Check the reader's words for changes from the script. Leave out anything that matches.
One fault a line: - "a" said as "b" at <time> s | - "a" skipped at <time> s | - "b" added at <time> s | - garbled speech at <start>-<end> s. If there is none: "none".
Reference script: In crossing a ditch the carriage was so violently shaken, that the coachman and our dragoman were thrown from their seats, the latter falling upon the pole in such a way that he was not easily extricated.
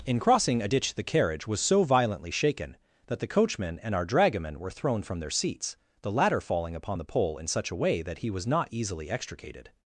none